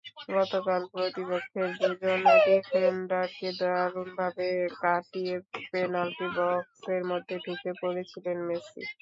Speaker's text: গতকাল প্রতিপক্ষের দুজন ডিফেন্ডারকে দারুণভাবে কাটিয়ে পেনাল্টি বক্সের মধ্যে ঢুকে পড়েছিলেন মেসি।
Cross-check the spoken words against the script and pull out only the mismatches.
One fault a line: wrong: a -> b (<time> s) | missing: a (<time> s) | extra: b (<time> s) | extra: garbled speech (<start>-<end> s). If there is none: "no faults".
no faults